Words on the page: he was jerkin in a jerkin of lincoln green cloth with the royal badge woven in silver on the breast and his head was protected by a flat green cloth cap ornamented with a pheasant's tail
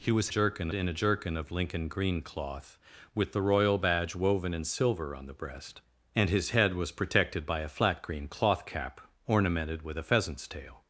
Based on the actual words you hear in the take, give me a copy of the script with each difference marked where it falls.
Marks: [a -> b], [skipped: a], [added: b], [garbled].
he was jerkin in a jerkin of lincoln green cloth with the royal badge woven in silver on the breast and his head was protected by a flat green cloth cap ornamented with a pheasant's tail